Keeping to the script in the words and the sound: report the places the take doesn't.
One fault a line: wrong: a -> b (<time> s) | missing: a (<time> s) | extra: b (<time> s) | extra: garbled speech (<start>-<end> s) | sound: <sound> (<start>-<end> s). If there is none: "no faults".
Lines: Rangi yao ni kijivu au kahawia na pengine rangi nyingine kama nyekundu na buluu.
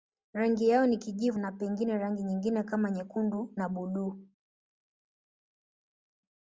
missing: au kahawia (1.4 s)